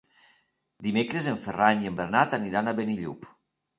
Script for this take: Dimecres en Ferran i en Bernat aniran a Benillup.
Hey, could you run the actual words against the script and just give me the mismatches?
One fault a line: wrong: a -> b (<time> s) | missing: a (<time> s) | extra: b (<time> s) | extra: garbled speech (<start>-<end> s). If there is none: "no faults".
no faults